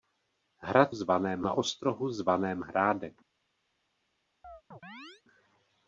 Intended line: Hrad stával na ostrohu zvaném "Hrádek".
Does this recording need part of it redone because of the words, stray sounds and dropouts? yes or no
yes